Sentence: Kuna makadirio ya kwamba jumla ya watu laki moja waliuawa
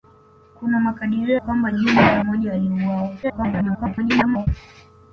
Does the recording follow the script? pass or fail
fail